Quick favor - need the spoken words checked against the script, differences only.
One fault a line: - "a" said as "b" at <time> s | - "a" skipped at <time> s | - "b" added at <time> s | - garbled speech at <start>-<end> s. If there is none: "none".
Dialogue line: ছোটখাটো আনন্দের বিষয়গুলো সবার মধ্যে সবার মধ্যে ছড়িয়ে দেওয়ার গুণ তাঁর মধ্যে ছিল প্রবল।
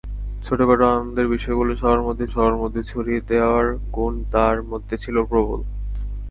none